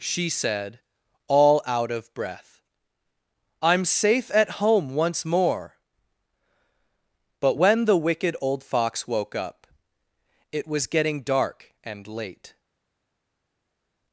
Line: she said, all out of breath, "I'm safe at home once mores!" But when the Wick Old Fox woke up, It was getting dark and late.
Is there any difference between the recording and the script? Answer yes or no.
yes